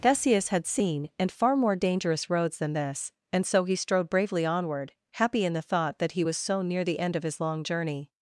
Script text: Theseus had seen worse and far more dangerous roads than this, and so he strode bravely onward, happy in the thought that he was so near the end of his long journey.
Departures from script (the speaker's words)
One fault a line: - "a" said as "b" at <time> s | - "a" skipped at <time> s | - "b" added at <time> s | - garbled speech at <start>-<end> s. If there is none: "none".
- "worse" skipped at 1.1 s